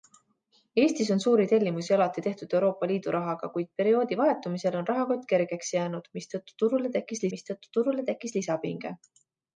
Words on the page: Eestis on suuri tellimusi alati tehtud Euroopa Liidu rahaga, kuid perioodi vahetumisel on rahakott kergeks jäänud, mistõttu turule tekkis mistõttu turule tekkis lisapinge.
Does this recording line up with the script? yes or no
yes